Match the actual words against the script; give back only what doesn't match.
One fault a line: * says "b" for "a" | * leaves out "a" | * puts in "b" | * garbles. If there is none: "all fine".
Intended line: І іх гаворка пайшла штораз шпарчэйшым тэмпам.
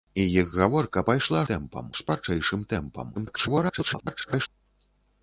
* says "тэмпам" for "штораз"
* garbles